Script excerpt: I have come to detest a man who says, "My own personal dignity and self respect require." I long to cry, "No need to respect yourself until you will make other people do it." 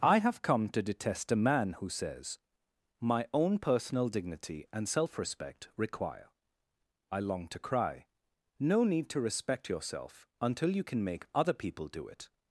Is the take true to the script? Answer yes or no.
no